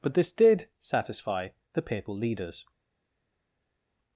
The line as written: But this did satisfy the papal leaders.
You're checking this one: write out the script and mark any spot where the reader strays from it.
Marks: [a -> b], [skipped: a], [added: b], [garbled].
But this did satisfy the papal leaders.